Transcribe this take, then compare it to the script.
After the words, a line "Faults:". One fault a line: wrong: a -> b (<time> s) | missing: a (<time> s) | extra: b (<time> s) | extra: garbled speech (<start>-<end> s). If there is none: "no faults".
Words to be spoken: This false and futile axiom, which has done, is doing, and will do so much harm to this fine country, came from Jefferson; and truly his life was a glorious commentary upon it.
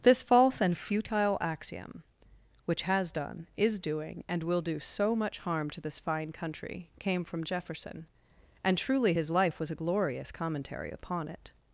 This false and futile axiom, which has done, is doing, and will do so much harm to this fine country, came from Jefferson; and truly his life was a glorious commentary upon it.
Faults:
no faults